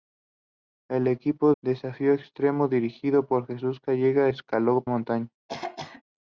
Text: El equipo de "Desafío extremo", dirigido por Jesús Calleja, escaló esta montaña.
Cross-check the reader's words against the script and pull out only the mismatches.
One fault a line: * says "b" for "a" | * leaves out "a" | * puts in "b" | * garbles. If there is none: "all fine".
* leaves out "de"
* leaves out "esta"